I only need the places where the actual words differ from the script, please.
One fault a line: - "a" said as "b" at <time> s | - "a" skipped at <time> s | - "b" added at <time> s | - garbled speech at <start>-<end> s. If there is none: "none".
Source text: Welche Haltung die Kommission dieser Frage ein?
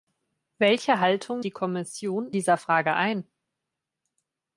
none